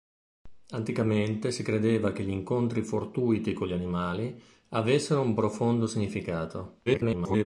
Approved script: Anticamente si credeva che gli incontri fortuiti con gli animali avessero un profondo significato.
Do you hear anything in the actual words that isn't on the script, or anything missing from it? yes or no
yes